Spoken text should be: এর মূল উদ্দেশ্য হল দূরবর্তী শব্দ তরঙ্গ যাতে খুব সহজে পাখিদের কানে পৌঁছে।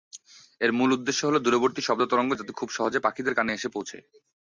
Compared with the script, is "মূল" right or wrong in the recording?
right